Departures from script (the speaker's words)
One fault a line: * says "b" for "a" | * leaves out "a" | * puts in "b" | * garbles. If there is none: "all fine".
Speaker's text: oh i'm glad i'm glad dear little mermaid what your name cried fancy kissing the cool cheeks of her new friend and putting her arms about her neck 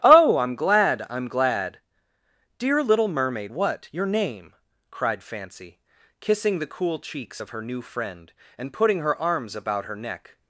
all fine